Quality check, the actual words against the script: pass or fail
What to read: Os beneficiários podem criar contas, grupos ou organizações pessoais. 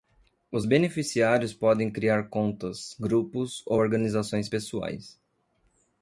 pass